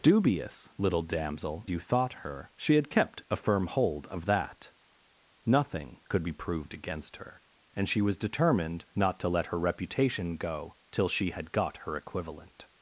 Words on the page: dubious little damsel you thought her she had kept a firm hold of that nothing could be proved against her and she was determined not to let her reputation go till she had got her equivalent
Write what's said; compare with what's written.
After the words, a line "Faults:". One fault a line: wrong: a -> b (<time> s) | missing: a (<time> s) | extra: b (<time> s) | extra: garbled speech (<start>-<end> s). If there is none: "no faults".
dubious little damsel you thought her she had kept a firm hold of that nothing could be proved against her and she was determined not to let her reputation go till she had got her equivalent
Faults:
no faults